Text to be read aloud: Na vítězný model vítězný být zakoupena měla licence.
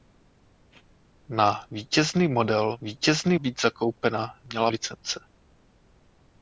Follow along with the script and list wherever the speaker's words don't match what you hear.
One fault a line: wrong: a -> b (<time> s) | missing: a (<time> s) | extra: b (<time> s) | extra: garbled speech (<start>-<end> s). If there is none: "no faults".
no faults